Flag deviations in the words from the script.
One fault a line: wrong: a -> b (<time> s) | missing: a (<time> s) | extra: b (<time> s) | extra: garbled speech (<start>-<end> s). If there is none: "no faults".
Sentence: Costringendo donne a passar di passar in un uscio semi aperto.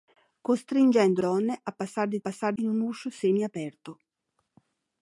no faults